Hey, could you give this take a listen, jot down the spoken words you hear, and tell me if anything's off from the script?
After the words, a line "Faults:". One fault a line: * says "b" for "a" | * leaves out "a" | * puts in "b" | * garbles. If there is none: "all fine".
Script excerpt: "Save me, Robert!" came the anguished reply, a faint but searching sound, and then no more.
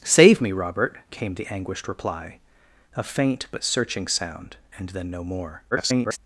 "Save me, Robert!" came the anguished reply, a faint but searching sound, and then no more. [garbled]
Faults:
* garbles